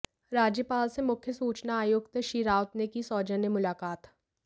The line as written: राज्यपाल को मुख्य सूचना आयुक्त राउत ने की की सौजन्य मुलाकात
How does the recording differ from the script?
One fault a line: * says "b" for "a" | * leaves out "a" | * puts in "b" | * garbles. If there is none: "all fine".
* says "से" for "को"
* puts in "श्री"
* leaves out "की"